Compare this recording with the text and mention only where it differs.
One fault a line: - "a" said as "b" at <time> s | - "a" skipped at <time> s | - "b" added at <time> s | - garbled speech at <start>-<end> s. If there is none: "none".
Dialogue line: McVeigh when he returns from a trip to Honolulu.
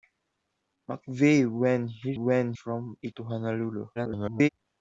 - "returns" said as "when" at 2.1 s
- "trip" skipped at 3.1 s
- garbled speech at 4.0-4.5 s